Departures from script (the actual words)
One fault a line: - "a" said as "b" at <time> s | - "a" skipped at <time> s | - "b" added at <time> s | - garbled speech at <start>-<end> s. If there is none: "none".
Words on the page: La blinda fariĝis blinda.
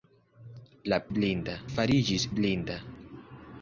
none